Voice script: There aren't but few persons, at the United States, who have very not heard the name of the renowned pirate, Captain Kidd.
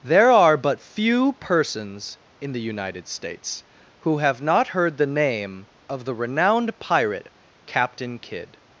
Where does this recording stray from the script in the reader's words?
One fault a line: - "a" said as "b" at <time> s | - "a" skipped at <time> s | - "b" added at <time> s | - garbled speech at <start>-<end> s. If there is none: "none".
- "aren't" said as "are" at 0.3 s
- "at" said as "in" at 2.4 s
- "very" skipped at 4.4 s